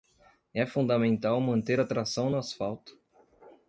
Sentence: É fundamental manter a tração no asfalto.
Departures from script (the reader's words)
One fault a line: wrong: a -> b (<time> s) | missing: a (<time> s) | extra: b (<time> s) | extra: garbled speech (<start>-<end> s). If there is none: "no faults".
no faults